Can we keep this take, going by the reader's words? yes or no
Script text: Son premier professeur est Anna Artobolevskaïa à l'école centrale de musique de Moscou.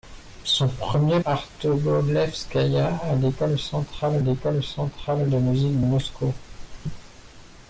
no